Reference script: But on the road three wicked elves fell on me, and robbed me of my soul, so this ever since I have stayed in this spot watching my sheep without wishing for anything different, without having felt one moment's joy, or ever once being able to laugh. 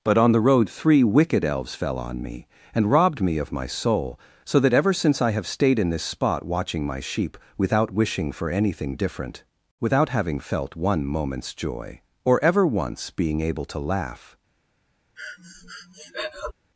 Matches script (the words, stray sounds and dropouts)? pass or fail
fail